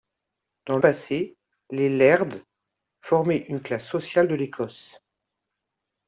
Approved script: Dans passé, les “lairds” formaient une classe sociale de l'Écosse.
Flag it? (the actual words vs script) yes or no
no